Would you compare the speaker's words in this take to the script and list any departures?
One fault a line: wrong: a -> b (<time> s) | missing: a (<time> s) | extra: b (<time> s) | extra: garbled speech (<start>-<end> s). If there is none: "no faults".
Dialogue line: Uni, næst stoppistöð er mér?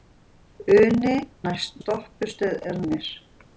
no faults